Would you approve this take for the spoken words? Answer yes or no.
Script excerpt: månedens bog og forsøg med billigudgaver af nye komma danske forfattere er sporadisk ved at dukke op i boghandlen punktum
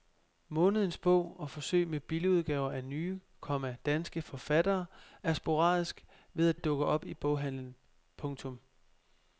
no